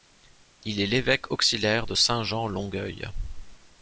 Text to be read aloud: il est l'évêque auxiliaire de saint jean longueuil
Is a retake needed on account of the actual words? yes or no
no